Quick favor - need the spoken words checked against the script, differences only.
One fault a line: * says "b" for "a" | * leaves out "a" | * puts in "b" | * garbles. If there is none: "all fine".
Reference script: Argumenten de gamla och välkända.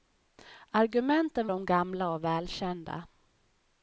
all fine